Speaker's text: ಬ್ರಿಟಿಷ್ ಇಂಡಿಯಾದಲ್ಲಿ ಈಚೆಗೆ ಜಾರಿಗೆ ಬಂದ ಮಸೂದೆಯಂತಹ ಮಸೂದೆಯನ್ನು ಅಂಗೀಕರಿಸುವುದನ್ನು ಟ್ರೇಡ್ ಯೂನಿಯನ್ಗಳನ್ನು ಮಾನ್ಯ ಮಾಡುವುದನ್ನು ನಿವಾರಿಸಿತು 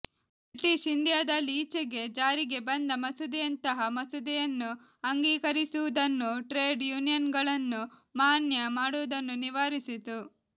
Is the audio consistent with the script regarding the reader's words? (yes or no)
yes